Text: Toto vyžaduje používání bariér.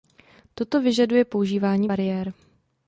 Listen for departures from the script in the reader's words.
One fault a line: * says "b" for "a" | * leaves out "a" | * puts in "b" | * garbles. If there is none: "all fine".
all fine